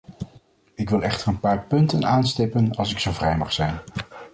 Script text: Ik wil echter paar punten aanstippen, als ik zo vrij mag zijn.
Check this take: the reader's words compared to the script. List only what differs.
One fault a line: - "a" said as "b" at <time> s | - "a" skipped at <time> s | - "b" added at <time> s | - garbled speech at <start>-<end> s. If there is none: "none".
- "een" added at 1.3 s